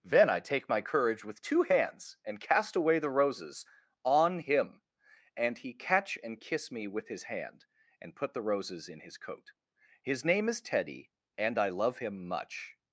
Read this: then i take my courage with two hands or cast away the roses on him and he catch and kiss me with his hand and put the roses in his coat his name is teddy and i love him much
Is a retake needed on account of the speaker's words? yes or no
yes